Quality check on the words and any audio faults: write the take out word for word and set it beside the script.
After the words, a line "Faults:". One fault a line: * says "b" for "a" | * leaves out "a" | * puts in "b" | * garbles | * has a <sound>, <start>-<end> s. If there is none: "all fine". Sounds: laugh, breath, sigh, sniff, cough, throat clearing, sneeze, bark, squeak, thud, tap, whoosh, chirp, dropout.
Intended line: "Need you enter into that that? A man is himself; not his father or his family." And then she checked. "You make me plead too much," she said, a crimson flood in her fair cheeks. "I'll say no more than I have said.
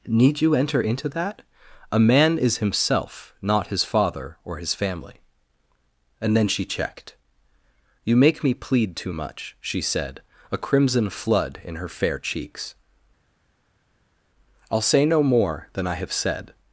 "Need you enter into that? A man is himself; not his father or his family." And then she checked. "You make me plead too much," she said, a crimson flood in her fair cheeks. "I'll say no more than I have said.
Faults:
* leaves out "that"